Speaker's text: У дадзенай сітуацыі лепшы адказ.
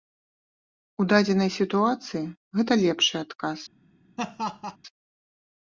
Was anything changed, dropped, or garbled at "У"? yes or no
no